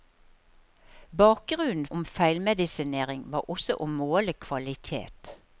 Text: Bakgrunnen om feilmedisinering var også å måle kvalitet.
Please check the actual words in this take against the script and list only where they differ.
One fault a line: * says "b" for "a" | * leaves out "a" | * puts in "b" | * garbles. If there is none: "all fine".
all fine